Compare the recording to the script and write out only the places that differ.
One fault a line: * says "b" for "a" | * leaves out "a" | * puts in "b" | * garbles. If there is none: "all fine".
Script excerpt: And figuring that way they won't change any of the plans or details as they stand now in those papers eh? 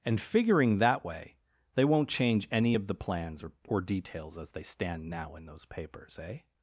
* puts in "or"